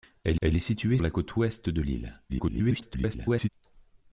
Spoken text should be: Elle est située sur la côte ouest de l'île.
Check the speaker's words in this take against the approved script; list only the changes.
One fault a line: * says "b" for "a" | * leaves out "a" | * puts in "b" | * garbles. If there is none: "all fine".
* puts in "elle"
* leaves out "sur"
* garbles